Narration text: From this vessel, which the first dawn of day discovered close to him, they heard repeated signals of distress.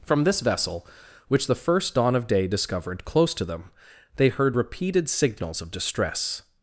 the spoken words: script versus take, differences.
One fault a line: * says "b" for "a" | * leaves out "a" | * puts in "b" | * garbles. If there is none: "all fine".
* says "them" for "him"